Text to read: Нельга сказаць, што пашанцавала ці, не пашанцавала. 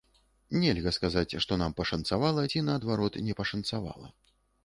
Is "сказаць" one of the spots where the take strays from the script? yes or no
no